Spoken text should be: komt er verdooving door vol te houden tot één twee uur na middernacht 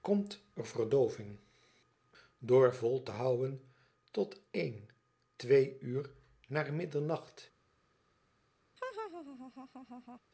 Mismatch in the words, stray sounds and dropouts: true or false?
true